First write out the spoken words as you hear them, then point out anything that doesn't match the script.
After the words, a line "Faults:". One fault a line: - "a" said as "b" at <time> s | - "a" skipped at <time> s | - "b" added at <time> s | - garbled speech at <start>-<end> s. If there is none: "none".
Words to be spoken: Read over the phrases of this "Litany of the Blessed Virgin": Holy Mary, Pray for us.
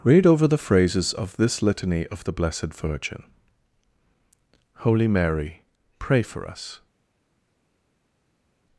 Read over the phrases of this "Litany of the Blessed Virgin": Holy Mary, Pray for us.
Faults:
none